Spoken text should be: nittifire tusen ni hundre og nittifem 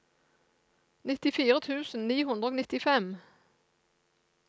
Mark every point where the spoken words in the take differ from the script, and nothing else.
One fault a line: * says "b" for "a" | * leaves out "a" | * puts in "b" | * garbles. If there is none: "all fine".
all fine